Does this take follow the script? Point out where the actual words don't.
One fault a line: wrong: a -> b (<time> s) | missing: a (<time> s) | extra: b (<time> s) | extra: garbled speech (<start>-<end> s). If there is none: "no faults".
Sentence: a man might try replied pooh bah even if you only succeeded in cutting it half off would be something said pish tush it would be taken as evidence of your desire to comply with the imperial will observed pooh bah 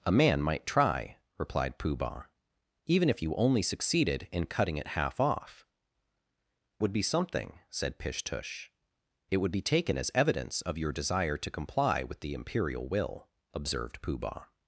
no faults